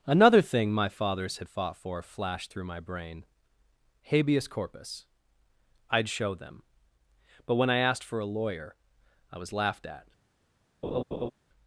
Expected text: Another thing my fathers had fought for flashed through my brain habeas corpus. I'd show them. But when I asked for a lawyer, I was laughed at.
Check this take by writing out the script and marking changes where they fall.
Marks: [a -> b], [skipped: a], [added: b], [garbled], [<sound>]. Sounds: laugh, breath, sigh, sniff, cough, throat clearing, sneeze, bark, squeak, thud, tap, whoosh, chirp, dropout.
Another thing my fathers had fought for flashed through my brain habeas corpus. I'd show them. But when I asked for a lawyer, I was laughed at. [laugh]